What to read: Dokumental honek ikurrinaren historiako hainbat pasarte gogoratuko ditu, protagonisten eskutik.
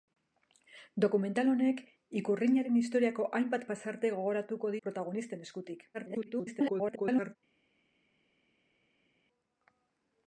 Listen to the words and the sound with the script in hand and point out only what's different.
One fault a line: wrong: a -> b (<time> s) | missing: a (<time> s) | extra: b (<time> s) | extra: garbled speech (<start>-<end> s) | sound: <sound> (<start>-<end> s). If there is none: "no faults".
missing: ditu (4.8 s)
extra: garbled speech (5.9-7.4 s)